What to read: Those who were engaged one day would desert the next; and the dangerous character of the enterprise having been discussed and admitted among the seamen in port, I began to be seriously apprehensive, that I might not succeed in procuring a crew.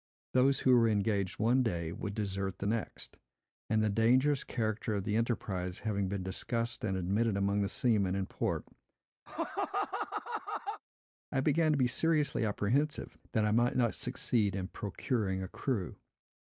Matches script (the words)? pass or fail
pass